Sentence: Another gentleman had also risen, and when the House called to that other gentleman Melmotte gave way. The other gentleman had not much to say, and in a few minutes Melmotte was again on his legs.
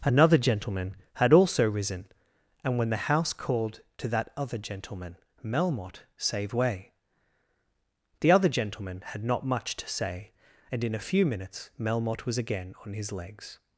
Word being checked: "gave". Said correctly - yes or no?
no